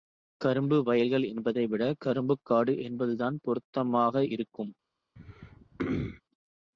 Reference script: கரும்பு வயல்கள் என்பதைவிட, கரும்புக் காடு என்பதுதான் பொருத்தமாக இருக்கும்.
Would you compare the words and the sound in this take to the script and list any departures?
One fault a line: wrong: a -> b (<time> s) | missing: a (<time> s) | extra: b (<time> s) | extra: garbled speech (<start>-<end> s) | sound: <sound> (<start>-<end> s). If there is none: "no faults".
sound: throat clearing (5.2-6.2 s)